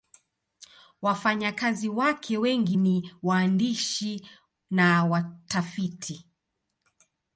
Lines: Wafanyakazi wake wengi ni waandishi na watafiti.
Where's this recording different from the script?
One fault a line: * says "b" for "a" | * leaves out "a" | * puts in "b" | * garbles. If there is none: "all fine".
all fine